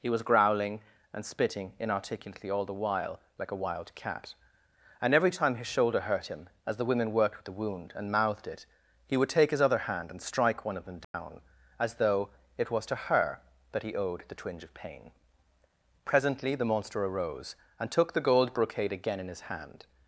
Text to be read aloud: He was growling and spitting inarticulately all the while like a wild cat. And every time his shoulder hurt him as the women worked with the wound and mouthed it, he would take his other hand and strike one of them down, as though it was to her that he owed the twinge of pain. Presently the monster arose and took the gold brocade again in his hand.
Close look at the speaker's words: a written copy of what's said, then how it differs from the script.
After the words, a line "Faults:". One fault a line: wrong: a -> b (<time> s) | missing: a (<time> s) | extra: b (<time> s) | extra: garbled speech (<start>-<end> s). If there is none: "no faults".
He was growling and spitting inarticulately all the while like a wild cat. And every time his shoulder hurt him as the women worked with the wound and mouthed it, he would take his other hand and strike one of them down, as though it was to her that he owed the twinge of pain. Presently the monster arose and took the gold brocade again in his hand.
Faults:
no faults